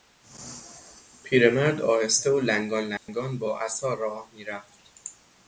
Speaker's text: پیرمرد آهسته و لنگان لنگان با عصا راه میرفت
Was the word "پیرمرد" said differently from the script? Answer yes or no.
no